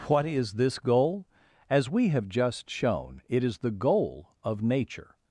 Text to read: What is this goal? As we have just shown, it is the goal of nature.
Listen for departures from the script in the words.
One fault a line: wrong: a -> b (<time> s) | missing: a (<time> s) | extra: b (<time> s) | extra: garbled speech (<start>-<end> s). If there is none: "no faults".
no faults